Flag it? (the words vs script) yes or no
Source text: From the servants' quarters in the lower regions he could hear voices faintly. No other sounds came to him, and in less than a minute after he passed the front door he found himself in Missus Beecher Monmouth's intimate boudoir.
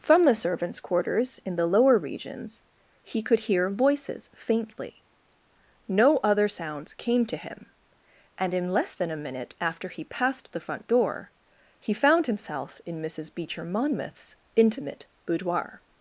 no